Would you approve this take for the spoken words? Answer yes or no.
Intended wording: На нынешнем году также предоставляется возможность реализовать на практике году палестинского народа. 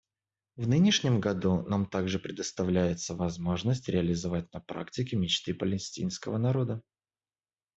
no